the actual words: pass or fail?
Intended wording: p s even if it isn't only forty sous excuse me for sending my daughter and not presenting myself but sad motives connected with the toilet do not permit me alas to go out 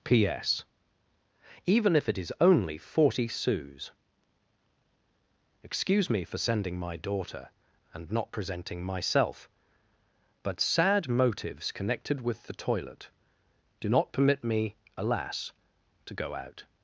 fail